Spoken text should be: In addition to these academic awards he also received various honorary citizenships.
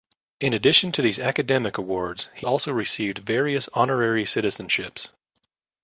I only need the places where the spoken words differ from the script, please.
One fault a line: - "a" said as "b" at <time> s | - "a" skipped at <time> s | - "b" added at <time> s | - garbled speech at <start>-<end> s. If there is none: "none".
none